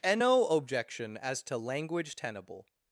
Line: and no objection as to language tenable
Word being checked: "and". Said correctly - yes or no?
yes